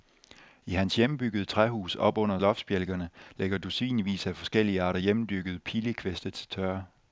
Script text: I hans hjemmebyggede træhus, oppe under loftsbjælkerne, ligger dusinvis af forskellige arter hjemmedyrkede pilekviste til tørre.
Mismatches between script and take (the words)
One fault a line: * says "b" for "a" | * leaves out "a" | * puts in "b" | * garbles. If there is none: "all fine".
all fine